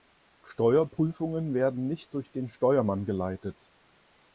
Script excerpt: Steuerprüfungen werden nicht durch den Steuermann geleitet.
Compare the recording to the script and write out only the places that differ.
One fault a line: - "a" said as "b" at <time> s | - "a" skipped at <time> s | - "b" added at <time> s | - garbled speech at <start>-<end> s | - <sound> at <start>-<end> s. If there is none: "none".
none